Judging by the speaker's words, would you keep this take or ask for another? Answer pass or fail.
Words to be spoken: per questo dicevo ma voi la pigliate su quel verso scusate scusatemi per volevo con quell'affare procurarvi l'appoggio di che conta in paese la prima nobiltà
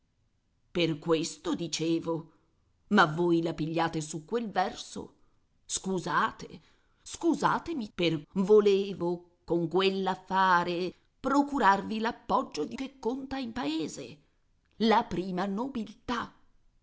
pass